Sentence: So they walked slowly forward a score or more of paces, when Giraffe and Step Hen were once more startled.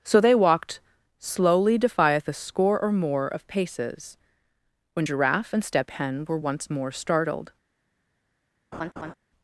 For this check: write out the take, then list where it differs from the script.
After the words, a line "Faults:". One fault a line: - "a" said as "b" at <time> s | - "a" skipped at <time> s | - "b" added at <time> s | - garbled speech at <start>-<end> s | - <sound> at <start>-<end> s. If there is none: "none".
So they walked slowly defieth a score or more of paces, when Giraffe and Step Hen were once more startled.
Faults:
- "forward" said as "defieth" at 1.8 s
- laugh at 8.7-9.1 s